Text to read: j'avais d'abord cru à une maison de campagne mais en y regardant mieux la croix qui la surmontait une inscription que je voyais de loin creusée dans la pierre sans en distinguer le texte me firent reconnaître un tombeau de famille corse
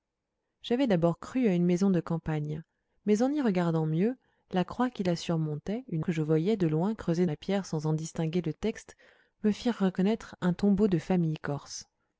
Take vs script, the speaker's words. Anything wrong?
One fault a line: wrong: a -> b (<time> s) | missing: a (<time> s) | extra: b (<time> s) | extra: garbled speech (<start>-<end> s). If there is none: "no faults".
missing: inscription (6.0 s)
missing: dans (7.2 s)